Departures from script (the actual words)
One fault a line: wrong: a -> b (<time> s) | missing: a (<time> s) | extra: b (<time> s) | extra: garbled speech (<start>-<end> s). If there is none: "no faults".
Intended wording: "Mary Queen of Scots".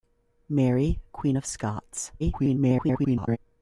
extra: garbled speech (2.2-3.4 s)